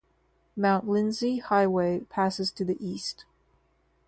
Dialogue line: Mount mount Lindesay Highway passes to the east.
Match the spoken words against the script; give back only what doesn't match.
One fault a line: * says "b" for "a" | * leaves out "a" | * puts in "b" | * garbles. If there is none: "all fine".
* leaves out "mount"